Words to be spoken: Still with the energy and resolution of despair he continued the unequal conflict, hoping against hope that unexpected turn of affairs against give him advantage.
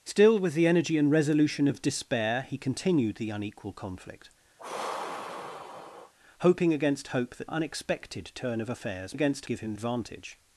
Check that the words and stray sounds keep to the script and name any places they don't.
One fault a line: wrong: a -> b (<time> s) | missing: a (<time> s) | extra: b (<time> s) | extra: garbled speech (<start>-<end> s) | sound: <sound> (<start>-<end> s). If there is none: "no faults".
sound: sigh (4.6-6.1 s)